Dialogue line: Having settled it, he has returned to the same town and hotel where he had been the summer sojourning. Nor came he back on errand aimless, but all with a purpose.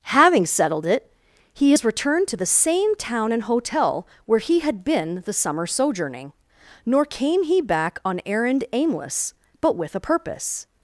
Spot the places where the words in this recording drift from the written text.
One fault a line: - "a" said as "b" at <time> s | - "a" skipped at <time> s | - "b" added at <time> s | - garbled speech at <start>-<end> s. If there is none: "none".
- "all" skipped at 9.8 s